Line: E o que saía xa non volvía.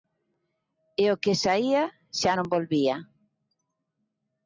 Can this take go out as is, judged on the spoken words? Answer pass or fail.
pass